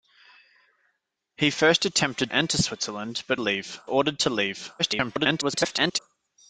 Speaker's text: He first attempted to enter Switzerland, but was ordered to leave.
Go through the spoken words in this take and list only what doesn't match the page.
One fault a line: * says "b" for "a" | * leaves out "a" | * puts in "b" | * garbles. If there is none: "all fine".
* leaves out "to"
* says "leave" for "was"
* garbles